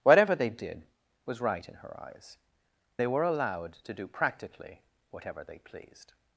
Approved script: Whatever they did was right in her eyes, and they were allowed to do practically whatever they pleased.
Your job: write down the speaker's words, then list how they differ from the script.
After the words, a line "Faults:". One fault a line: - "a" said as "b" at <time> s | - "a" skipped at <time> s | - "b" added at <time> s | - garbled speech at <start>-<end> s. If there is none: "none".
Whatever they did was right in her eyes, they were allowed to do practically whatever they pleased.
Faults:
- "and" skipped at 2.4 s